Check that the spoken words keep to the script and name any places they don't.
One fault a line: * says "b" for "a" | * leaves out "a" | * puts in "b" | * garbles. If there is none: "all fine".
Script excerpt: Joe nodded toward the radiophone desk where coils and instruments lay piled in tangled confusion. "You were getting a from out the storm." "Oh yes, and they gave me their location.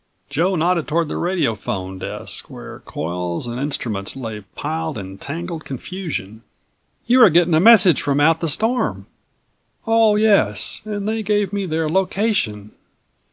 * puts in "message"